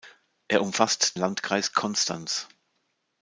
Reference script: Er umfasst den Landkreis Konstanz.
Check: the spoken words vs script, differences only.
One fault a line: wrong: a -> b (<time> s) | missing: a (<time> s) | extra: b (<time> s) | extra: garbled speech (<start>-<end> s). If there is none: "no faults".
missing: den (1.2 s)